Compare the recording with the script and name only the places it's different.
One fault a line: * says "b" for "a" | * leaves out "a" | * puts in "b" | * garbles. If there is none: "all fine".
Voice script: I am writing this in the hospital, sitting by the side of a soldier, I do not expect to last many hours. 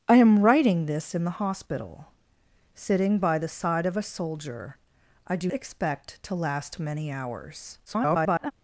* leaves out "not"
* garbles